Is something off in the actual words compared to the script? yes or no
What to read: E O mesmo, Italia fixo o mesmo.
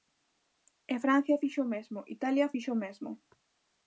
yes